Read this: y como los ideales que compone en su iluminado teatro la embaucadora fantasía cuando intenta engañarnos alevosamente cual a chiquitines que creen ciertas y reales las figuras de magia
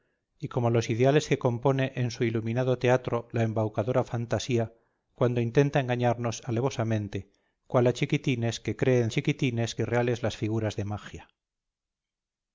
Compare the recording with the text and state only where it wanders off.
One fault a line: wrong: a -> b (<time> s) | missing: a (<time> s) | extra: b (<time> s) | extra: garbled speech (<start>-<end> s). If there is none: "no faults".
wrong: ciertas -> chiquitines (9.1 s)